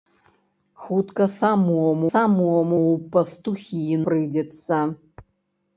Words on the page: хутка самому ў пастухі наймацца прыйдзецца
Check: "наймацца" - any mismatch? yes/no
yes